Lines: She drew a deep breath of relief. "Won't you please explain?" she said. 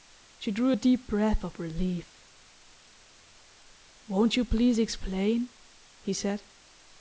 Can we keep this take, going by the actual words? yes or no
no